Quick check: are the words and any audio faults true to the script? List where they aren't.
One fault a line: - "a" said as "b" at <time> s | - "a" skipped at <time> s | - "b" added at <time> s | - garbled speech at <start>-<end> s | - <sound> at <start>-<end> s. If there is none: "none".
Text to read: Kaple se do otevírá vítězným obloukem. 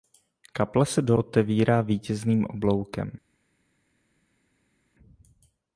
none